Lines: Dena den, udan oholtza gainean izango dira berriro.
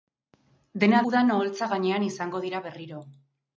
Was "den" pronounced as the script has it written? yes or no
no